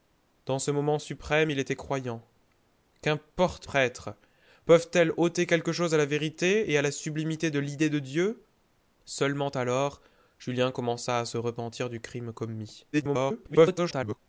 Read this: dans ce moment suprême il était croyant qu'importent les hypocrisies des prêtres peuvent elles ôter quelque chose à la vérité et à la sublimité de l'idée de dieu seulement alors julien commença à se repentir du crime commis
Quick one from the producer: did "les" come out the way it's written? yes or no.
no